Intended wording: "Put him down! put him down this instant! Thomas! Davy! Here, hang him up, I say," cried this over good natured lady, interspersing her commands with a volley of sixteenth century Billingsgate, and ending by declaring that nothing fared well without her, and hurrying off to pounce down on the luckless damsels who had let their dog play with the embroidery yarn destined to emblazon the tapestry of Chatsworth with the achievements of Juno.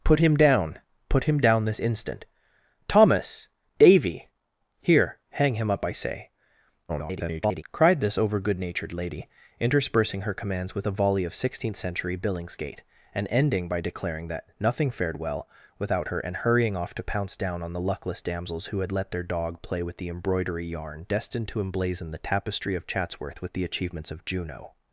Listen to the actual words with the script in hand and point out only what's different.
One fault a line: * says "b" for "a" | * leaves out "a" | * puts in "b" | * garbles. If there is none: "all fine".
* garbles